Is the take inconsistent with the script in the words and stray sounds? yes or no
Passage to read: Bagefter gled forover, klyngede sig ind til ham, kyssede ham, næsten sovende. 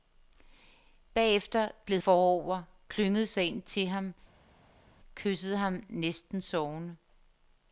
no